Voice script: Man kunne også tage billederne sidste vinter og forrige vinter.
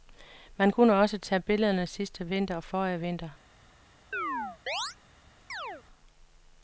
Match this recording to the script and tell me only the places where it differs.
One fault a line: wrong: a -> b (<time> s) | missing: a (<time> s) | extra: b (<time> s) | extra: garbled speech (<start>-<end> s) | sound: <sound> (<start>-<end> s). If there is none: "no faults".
sound: chirp (4.1-5.0 s)
sound: chirp (5.5-5.8 s)